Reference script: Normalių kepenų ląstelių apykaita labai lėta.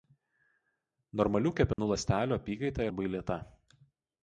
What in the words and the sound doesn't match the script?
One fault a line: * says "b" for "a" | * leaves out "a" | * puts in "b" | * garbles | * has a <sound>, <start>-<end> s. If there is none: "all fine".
* has a dropout, 1.7-1.8 s